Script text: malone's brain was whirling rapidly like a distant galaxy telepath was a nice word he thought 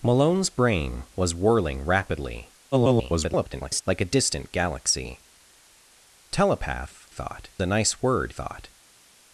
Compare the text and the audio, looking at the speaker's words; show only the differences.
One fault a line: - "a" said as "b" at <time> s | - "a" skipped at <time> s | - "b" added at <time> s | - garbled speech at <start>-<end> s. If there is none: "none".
- garbled speech at 2.7-3.8 s
- "was" said as "thought" at 7.1 s
- "he" skipped at 8.3 s